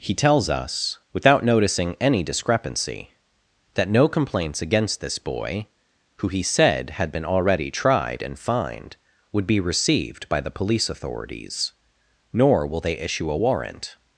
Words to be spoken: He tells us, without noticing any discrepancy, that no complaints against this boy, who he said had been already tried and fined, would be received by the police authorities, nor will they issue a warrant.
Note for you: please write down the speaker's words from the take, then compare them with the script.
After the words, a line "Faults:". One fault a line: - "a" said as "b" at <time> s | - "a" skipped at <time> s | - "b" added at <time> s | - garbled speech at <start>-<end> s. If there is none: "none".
He tells us, without noticing any discrepancy, that no complaints against this boy, who he said had been already tried and fined, would be received by the police authorities, nor will they issue a warrant.
Faults:
none